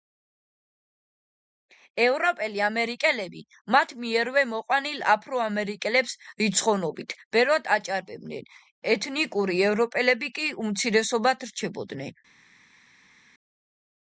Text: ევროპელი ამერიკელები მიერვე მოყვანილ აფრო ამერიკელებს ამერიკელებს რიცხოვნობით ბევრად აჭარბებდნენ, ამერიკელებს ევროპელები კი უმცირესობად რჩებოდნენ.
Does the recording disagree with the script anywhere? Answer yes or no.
yes